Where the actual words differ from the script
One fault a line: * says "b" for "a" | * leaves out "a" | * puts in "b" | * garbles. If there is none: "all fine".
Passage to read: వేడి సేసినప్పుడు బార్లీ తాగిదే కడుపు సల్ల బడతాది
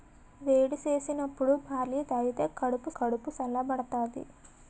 * puts in "కడుపు"